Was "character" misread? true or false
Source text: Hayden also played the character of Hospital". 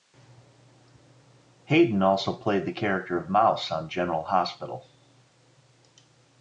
false